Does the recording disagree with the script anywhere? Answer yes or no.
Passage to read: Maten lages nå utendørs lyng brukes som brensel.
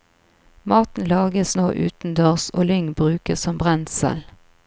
yes